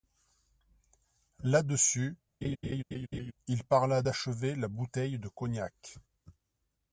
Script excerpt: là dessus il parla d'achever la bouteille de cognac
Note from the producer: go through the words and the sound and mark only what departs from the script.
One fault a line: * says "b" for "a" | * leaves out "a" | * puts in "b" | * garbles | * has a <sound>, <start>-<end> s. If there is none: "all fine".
* has a laugh, 2.4-3.3 s